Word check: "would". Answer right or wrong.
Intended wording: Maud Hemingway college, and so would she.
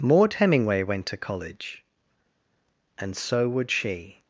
right